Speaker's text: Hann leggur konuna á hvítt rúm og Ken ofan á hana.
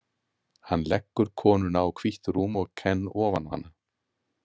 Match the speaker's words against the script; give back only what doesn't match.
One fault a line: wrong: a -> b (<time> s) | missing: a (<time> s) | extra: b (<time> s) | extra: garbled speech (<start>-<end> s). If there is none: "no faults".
no faults